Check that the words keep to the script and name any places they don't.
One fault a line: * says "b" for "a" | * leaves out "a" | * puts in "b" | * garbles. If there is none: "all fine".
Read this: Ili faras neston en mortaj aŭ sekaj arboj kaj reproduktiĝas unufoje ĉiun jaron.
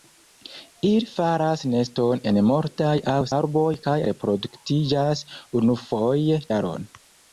* leaves out "sekaj"
* leaves out "ĉiun"